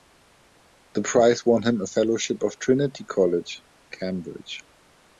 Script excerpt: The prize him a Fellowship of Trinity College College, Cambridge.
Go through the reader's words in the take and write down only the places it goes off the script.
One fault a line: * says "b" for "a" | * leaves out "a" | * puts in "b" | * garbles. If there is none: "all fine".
* puts in "won"
* leaves out "College"